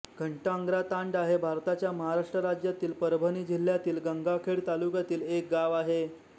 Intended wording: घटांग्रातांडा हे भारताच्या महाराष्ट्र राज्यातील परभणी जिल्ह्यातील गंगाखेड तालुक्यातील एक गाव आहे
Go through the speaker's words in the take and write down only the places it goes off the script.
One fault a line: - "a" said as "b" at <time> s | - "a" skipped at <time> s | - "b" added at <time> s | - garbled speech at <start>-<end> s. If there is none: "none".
none